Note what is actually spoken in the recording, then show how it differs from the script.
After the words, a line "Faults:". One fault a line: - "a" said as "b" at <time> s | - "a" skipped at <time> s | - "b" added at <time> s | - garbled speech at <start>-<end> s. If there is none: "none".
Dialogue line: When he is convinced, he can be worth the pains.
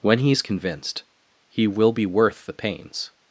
When he is convinced, he will be worth the pains.
Faults:
- "can" said as "will" at 1.7 s